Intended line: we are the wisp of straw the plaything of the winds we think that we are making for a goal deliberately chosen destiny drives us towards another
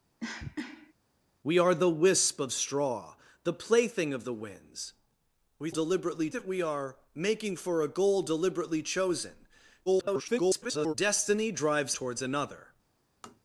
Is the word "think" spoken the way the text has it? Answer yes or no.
no